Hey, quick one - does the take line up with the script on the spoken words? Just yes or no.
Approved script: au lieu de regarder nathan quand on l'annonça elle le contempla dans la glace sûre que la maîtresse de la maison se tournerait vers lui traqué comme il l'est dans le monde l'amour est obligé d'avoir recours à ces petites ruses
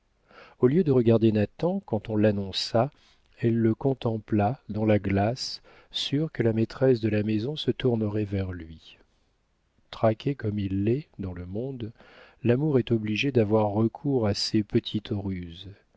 yes